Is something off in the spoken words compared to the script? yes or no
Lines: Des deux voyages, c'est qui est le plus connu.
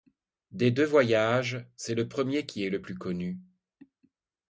yes